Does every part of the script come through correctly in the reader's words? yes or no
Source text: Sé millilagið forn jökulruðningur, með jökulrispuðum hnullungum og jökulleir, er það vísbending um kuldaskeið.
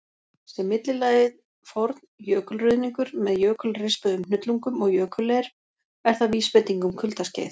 yes